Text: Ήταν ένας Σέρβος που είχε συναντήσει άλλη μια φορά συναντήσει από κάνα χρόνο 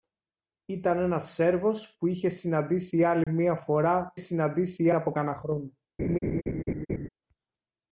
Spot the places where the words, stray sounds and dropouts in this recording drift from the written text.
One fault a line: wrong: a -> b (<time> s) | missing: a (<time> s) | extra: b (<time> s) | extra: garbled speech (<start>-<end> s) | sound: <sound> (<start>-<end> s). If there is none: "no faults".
sound: dropout (3.2-3.3 s)
sound: laugh (6.0-7.1 s)